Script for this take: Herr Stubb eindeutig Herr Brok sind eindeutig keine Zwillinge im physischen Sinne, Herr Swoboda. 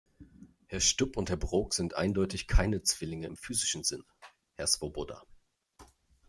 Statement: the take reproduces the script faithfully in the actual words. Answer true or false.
false